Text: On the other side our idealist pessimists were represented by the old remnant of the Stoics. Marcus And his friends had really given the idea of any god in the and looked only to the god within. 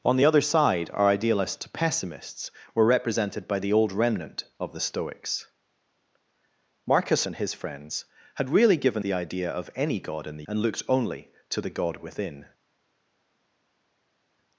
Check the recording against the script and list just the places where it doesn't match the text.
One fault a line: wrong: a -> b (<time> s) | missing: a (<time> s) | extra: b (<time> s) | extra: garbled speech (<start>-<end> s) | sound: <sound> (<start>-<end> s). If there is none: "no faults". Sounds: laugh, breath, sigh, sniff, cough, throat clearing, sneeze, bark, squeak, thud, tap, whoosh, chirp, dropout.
no faults